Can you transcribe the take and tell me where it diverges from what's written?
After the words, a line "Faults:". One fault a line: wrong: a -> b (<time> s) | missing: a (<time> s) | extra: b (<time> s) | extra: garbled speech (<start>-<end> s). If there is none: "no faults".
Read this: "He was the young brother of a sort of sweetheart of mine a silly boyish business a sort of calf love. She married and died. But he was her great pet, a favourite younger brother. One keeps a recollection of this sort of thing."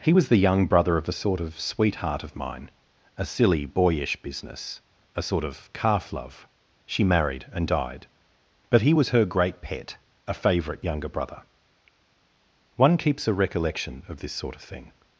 "He was the young brother of a sort of sweetheart of mine a silly boyish business a sort of calf love. She married and died. But he was her great pet, a favourite younger brother. One keeps a recollection of this sort of thing."
Faults:
no faults